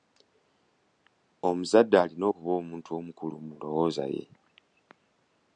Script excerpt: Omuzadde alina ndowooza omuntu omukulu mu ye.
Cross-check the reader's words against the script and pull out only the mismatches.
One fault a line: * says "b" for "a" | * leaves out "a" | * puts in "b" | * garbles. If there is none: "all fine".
* says "okuba" for "ndowooza"
* puts in "ndowooza"